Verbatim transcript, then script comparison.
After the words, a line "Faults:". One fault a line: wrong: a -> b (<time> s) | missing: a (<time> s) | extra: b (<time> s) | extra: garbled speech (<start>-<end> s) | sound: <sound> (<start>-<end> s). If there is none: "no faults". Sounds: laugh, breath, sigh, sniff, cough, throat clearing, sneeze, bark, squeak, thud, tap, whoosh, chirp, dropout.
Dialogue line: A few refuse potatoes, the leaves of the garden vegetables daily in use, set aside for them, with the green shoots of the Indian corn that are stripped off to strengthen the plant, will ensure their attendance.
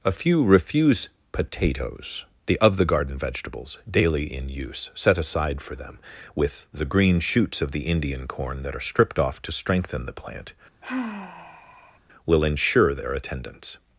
A few refuse potatoes, the of the garden vegetables daily in use, set aside for them, with the green shoots of the Indian corn that are stripped off to strengthen the plant, will ensure their attendance.
Faults:
missing: leaves (2.6 s)
sound: sigh (10.8-12.0 s)